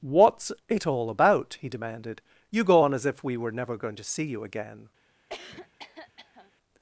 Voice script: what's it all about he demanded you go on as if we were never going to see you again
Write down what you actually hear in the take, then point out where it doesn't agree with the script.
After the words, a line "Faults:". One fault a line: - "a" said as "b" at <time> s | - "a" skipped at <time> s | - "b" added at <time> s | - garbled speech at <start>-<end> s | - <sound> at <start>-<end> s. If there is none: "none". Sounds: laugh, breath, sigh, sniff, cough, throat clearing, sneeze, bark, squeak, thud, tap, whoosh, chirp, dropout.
what's it all about he demanded you go on as if we were never going to see you again
Faults:
- cough at 5.3-6.5 s